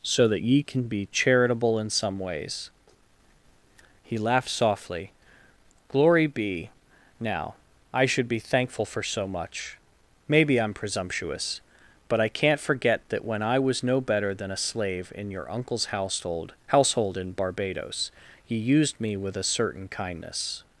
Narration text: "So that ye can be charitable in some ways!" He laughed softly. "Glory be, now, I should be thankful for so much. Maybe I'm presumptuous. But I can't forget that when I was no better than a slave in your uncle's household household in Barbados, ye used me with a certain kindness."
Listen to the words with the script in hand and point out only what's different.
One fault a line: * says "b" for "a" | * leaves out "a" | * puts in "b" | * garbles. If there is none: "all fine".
all fine